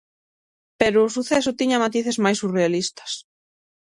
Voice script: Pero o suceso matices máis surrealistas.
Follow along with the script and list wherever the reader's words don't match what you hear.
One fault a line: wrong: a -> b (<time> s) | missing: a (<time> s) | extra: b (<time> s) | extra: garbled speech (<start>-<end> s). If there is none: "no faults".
extra: tiña (1.6 s)